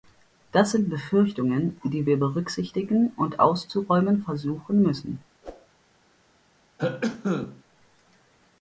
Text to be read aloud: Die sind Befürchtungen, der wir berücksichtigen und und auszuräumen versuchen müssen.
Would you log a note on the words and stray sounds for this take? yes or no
yes